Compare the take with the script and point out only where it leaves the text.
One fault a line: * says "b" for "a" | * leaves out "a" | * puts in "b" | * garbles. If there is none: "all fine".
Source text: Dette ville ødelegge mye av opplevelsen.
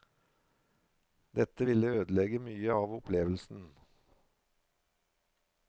all fine